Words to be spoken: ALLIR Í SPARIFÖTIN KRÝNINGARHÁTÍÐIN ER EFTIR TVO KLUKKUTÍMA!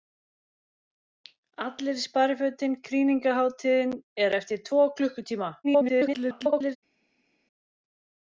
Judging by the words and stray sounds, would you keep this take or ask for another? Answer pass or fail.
fail